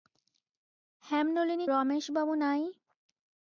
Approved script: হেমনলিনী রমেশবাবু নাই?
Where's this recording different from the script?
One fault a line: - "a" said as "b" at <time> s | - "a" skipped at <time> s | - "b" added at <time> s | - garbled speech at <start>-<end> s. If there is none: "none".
none